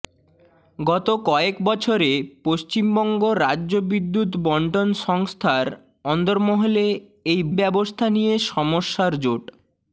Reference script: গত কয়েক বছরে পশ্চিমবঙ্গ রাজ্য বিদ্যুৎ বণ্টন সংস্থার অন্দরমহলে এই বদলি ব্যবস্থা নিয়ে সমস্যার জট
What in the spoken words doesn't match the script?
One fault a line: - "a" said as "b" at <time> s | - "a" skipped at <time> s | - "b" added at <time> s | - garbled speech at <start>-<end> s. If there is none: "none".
- "বদলি" skipped at 7.4 s